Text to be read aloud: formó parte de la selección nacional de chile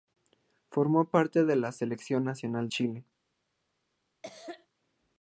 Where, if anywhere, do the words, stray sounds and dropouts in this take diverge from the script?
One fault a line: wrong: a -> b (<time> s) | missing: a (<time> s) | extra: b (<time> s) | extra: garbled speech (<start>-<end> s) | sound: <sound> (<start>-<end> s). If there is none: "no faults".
missing: de (2.7 s)
sound: cough (4.2-4.7 s)